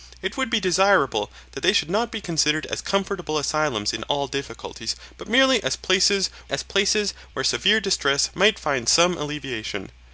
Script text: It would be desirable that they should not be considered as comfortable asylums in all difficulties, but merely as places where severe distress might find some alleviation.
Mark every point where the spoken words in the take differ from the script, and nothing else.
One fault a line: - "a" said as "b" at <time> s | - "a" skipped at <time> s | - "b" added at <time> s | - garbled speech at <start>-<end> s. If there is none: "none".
- "as places" added at 6.5 s